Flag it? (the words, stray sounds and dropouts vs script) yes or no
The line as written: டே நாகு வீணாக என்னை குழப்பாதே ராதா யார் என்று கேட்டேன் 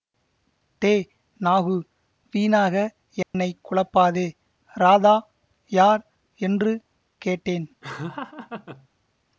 yes